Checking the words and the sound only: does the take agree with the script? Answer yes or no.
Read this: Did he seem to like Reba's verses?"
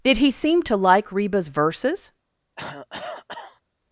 no